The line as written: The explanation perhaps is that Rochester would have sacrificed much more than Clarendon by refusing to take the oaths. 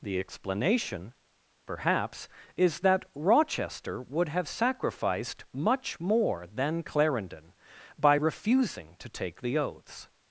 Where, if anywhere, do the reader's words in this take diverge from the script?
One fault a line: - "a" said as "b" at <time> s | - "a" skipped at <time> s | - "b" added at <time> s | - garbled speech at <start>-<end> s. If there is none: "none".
none